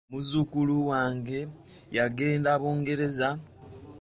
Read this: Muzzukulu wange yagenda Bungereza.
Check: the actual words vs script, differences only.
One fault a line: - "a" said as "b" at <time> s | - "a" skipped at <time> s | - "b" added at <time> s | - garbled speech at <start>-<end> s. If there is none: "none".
none